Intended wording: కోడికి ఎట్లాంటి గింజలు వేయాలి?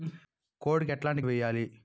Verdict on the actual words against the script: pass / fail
fail